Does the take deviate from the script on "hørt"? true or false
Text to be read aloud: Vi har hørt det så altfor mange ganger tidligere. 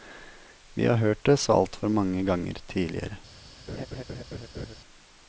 false